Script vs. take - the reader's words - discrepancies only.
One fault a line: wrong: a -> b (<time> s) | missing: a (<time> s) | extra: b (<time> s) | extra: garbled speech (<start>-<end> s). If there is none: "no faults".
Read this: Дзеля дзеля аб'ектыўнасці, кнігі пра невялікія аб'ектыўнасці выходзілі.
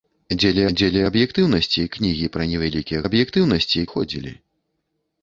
no faults